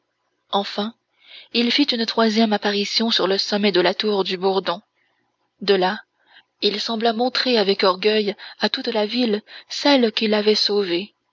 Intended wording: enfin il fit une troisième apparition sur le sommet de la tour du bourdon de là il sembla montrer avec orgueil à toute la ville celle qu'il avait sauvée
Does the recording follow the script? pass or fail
pass